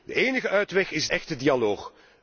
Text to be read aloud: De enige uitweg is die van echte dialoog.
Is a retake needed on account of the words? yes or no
yes